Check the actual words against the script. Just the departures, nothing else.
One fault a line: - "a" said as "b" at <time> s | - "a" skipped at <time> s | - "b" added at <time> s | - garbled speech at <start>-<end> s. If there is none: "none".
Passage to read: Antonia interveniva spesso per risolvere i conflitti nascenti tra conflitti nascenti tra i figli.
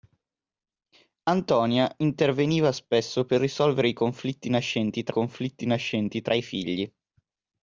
none